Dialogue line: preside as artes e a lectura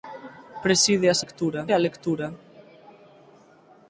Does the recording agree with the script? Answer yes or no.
no